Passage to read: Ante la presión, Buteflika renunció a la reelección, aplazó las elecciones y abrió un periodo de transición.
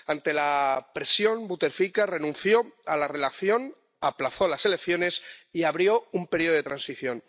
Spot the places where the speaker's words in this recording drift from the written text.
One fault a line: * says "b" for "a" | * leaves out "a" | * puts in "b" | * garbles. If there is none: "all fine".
all fine